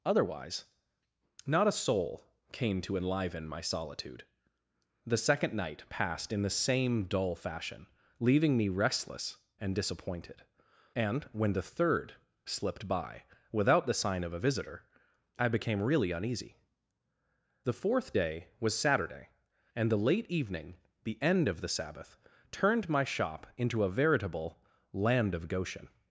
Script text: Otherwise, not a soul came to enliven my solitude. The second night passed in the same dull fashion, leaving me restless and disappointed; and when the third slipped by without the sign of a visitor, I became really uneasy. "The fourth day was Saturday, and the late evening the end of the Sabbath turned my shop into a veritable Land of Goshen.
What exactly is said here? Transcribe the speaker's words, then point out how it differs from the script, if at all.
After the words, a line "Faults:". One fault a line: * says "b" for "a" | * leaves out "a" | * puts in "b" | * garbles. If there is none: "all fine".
Otherwise, not a soul came to enliven my solitude. The second night passed in the same dull fashion, leaving me restless and disappointed; and when the third slipped by without the sign of a visitor, I became really uneasy. "The fourth day was Saturday, and the late evening the end of the Sabbath turned my shop into a veritable Land of Goshen.
Faults:
all fine